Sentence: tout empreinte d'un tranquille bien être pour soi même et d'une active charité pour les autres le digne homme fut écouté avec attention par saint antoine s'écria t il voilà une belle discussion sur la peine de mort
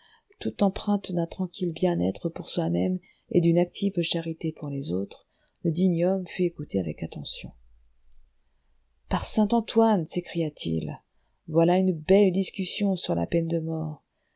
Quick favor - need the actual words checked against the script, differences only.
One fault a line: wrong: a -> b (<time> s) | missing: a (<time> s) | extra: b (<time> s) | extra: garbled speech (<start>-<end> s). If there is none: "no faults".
no faults